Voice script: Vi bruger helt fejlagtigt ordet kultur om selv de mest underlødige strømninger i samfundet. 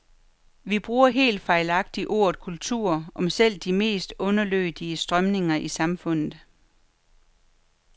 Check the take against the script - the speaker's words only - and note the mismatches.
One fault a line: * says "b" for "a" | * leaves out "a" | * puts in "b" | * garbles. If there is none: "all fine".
all fine